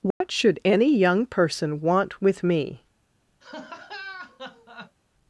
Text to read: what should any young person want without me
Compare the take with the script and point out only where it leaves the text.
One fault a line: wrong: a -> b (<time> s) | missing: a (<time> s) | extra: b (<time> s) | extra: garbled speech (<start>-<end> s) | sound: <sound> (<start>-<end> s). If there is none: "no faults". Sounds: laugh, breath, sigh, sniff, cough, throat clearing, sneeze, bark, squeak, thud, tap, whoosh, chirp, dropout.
sound: dropout (0.1-0.2 s)
wrong: without -> with (2.2 s)
sound: laugh (3.4-5.0 s)